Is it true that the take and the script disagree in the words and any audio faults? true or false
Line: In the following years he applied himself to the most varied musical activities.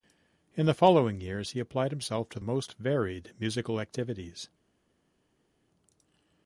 true